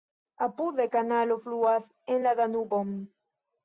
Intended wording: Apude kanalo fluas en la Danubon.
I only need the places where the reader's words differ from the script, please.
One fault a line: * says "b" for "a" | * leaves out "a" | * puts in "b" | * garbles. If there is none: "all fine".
all fine